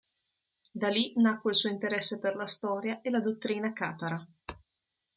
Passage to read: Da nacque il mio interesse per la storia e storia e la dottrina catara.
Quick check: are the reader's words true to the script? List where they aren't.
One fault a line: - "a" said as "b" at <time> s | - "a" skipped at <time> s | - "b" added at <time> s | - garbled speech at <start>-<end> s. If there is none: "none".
- "lì" added at 0.9 s
- "mio" said as "suo" at 1.6 s
- "storia e" skipped at 3.1 s